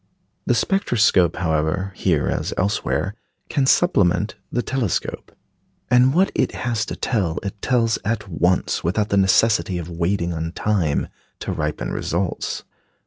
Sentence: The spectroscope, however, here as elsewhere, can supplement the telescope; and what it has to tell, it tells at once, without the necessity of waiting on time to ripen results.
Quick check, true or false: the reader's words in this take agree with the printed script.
true